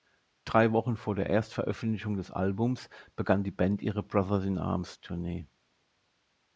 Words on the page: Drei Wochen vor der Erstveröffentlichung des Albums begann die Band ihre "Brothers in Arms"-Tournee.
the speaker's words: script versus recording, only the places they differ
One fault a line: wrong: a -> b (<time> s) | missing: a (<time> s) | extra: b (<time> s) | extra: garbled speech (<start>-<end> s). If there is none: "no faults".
no faults